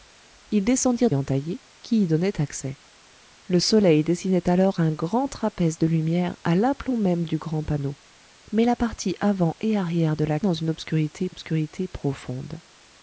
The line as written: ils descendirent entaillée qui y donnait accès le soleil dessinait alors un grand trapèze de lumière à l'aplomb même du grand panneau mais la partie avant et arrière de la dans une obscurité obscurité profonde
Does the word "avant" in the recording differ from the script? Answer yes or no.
no